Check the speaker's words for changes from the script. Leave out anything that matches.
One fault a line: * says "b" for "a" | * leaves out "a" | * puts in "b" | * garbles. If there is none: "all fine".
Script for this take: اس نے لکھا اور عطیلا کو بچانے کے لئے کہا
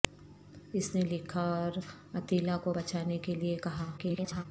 * garbles